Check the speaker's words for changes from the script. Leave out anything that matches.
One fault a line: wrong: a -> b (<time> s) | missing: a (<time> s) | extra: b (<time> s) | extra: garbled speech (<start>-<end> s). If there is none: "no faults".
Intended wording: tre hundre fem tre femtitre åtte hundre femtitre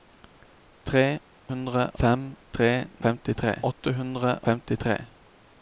no faults